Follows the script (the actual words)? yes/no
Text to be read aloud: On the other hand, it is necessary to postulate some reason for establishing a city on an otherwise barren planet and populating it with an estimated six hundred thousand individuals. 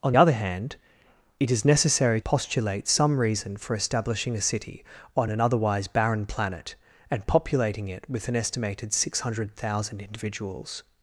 no